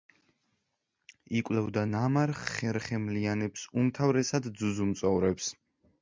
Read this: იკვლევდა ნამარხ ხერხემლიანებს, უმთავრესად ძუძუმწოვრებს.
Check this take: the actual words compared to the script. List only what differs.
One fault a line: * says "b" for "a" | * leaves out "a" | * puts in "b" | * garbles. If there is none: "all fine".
all fine